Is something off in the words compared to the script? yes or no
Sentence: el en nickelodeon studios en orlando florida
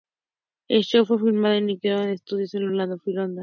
yes